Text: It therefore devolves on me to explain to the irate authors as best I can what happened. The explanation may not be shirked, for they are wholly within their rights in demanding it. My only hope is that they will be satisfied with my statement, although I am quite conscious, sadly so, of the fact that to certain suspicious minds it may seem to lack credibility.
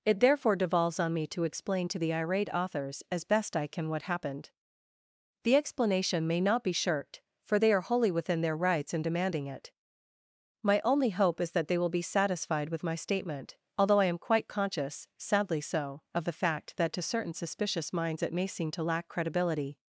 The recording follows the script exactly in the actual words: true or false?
true